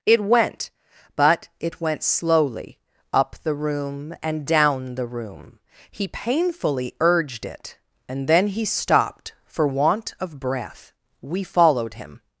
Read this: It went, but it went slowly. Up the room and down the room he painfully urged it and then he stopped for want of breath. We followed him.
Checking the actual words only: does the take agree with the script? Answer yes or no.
yes